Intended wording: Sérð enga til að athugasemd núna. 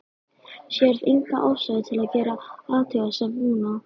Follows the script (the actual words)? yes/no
no